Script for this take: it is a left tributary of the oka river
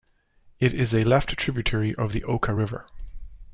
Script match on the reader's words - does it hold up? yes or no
yes